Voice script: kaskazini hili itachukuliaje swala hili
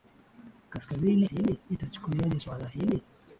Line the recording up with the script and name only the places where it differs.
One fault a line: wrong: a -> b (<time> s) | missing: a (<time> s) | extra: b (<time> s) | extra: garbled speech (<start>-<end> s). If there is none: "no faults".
no faults